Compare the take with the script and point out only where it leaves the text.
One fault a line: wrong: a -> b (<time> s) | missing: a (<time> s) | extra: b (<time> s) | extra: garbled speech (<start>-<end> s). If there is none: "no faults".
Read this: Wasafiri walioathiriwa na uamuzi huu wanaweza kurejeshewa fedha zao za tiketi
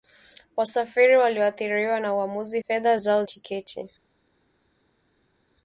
missing: huu wanaweza kurejeshewa (2.6 s)
missing: za (3.2 s)